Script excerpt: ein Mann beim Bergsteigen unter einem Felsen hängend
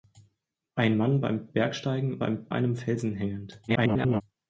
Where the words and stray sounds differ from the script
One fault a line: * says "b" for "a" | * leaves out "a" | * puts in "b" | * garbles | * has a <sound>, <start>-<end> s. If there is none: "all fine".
* says "beim" for "unter"
* garbles